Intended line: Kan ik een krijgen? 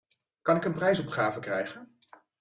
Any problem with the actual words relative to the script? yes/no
yes